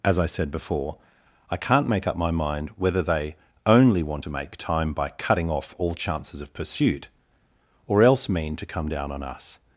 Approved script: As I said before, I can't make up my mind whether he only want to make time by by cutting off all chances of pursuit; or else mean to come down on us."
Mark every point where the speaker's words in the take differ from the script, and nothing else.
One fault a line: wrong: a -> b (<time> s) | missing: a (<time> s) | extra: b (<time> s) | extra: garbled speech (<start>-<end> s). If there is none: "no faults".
wrong: he -> they (3.0 s)
missing: by (5.1 s)